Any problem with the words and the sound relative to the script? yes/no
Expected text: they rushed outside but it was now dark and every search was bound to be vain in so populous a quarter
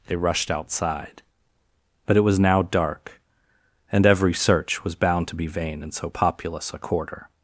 no